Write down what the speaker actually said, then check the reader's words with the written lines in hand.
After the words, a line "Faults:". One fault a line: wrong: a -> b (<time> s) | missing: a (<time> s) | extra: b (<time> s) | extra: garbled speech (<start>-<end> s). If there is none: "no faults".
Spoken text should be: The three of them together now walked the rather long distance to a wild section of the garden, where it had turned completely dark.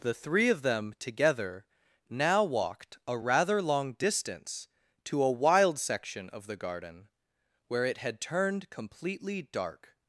The three of them together now walked a rather long distance to a wild section of the garden, where it had turned completely dark.
Faults:
wrong: the -> a (3.1 s)